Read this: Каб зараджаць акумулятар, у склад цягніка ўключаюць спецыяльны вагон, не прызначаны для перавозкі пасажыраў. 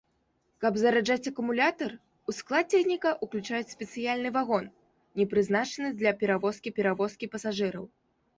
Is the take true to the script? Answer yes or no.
no